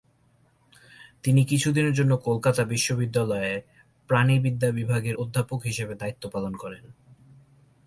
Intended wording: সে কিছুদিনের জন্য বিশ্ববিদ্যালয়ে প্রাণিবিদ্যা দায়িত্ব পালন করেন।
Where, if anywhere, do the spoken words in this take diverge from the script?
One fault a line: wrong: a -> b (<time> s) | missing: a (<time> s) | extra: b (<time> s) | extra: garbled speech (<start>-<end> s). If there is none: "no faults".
wrong: সে -> তিনি (1.2 s)
extra: কলকাতা (2.2 s)
extra: বিভাগের অধ্যাপক হিসেবে (4.7 s)